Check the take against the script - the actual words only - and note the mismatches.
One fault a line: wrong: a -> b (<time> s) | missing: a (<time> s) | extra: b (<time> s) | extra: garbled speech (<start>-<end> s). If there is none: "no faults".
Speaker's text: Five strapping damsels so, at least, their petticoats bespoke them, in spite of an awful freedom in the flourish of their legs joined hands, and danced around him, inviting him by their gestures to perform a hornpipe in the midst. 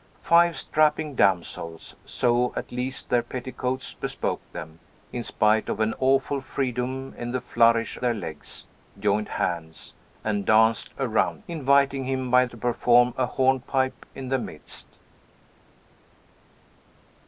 missing: of (8.0 s)
missing: him (11.4 s)
missing: their gestures (12.5 s)